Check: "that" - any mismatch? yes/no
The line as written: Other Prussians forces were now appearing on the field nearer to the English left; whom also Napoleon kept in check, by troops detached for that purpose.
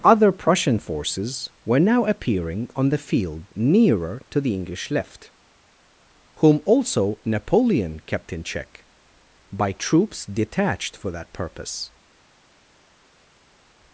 no